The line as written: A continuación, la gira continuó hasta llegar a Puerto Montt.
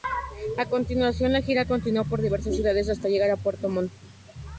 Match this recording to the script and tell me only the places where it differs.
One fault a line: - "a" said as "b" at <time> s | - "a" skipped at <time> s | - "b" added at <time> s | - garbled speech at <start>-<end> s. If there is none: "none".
- "por diversas ciudades" added at 2.1 s